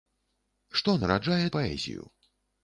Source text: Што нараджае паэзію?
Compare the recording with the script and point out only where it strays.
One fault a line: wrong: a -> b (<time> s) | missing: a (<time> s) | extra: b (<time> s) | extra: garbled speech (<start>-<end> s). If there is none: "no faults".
no faults